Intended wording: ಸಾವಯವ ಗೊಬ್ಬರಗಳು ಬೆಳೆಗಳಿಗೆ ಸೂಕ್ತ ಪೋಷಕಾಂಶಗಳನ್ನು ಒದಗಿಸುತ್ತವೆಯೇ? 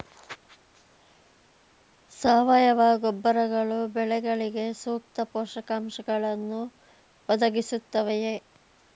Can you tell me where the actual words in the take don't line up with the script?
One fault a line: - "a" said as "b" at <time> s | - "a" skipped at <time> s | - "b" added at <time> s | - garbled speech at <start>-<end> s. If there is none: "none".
none